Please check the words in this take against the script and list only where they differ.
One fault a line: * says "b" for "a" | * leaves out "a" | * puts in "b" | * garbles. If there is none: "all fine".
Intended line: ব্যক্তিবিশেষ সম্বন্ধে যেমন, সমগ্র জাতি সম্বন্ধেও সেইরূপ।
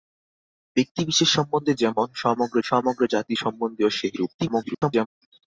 * puts in "সমগ্র"
* garbles